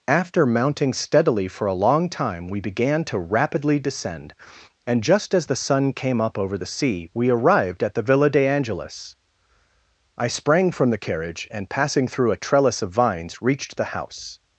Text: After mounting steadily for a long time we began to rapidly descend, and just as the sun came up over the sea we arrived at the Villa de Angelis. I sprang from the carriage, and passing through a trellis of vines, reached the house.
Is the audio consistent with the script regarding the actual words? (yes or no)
yes